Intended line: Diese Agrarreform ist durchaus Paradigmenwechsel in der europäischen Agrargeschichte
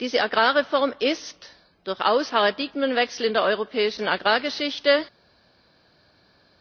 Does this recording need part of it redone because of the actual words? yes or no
no